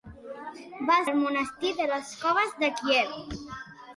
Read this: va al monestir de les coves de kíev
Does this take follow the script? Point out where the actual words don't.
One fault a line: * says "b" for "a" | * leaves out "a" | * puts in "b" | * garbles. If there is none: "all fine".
all fine